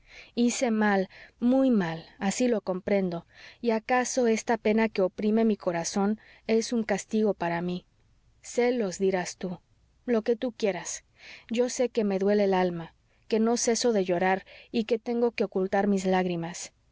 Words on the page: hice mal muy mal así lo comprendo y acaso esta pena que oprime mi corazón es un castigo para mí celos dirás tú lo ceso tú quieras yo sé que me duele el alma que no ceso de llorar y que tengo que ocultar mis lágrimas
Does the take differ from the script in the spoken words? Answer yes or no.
yes